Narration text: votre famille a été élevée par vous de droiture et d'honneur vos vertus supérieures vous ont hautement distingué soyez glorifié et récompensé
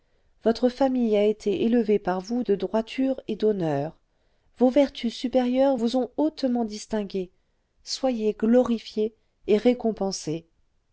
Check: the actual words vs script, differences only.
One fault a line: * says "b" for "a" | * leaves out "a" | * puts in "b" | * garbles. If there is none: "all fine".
all fine